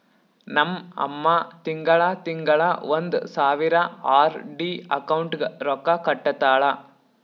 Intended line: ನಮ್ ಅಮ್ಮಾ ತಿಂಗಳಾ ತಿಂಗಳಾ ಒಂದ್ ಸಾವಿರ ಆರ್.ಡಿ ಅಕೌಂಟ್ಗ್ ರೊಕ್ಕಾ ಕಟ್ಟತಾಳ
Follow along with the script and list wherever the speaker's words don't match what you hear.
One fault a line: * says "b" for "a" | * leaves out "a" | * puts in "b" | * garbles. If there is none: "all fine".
all fine